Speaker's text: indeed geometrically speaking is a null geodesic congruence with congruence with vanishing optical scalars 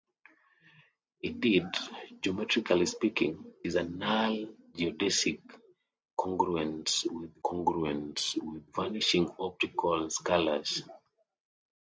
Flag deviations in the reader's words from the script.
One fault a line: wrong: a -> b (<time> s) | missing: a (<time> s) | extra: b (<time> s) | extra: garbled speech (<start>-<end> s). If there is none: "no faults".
no faults